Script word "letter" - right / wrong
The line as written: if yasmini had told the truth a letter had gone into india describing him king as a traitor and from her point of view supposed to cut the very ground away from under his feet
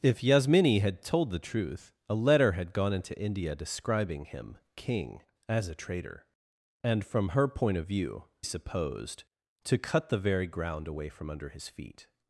right